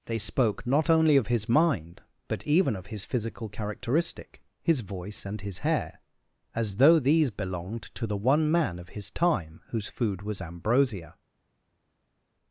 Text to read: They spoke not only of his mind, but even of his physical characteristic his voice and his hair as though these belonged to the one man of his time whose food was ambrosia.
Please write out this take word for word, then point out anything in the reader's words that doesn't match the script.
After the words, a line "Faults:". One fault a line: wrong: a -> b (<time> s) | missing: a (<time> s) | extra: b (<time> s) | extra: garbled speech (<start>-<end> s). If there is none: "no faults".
They spoke not only of his mind, but even of his physical characteristic his voice and his hair as though these belonged to the one man of his time whose food was ambrosia.
Faults:
no faults